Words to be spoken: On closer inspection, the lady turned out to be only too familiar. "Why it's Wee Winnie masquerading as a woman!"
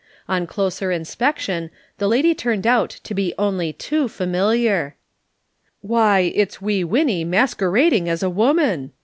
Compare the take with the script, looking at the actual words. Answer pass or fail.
pass